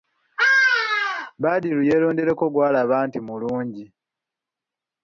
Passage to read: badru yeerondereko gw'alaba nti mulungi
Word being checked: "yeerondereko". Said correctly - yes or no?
yes